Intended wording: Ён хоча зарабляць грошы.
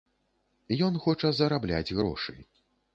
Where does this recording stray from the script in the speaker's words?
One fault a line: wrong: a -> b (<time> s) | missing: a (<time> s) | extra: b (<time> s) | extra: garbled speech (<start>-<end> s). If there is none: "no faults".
no faults